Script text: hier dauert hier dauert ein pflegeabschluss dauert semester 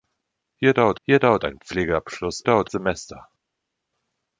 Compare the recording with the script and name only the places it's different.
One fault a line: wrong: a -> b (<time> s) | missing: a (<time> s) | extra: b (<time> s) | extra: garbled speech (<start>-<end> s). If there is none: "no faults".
no faults